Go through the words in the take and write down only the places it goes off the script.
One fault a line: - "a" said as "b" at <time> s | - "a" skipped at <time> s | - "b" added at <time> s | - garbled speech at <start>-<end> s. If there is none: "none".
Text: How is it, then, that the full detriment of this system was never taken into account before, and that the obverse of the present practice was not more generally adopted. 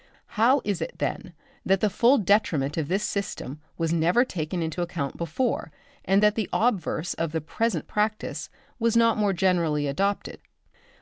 none